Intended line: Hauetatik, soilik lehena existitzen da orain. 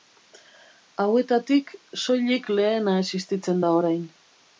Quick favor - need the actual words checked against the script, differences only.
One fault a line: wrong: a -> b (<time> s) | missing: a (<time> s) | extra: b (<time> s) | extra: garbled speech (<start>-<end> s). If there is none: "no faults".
no faults